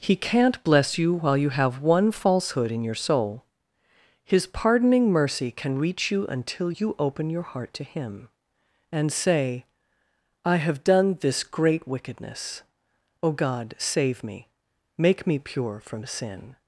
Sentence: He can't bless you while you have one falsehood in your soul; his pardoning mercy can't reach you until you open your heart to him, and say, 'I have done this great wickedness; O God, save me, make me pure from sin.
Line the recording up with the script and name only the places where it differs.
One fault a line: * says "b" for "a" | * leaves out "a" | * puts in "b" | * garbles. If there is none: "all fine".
* says "can" for "can't"